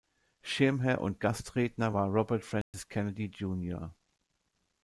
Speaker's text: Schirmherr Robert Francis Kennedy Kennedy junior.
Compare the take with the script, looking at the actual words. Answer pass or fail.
fail